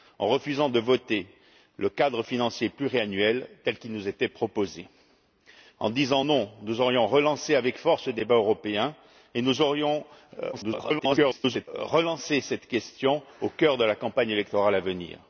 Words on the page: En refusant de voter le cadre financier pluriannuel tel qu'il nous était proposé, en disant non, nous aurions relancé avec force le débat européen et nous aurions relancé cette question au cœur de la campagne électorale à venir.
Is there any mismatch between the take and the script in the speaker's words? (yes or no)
yes